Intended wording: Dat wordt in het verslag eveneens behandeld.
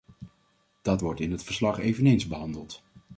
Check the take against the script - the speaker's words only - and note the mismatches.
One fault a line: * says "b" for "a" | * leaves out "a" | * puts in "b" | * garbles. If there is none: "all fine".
all fine